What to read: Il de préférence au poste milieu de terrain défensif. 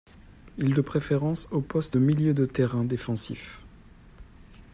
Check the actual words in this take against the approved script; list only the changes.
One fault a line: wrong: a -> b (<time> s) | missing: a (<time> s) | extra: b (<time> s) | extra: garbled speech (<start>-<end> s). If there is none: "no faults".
no faults